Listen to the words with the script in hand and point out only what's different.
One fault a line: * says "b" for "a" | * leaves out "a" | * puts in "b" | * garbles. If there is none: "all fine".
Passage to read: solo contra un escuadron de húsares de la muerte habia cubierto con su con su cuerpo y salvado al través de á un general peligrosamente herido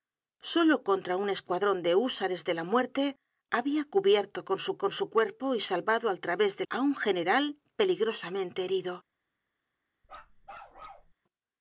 all fine